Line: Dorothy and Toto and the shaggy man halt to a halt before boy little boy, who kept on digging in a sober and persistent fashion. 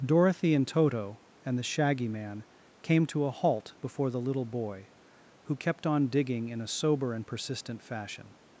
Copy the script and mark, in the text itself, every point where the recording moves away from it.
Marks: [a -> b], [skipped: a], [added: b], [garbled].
Dorothy and Toto and the shaggy man [halt -> came] to a halt before [boy -> the] little boy, who kept on digging in a sober and persistent fashion.